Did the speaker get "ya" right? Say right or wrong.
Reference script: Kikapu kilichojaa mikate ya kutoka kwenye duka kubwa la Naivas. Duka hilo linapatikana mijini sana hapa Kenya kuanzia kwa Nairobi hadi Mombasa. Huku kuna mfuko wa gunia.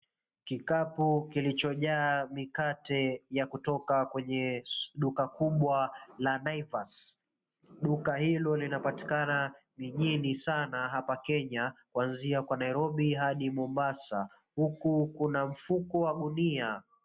right